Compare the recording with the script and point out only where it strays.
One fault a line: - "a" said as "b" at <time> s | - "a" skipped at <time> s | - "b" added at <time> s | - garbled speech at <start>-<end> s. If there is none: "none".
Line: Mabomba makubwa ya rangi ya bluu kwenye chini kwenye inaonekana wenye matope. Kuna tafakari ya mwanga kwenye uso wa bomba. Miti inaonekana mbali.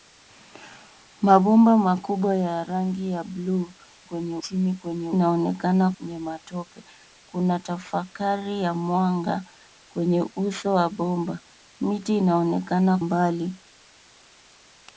none